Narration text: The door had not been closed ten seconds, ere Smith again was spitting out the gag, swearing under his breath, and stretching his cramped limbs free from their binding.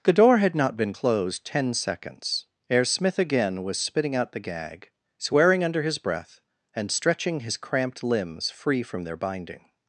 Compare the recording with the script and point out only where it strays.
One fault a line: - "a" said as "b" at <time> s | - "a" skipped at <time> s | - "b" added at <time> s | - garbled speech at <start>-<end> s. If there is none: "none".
none